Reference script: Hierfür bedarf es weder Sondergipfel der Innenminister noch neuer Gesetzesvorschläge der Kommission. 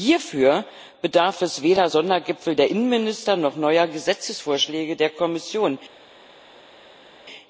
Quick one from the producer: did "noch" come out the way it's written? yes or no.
yes